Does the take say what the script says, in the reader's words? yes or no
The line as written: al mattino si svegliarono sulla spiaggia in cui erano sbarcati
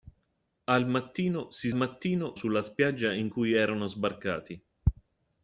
no